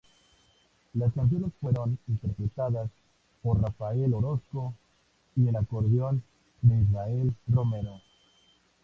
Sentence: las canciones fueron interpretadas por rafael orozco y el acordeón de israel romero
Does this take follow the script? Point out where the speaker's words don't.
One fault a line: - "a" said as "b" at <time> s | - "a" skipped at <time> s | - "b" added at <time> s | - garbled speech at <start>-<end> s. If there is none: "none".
none